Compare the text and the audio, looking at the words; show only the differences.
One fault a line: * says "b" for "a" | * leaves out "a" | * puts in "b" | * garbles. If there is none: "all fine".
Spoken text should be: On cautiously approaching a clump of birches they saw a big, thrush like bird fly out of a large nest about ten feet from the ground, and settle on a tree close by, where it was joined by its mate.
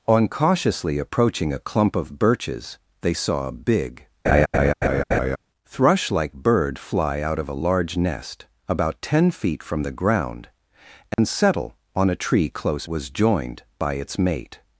* leaves out "by where it"